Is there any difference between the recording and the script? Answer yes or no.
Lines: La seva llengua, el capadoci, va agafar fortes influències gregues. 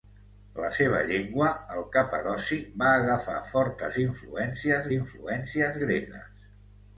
yes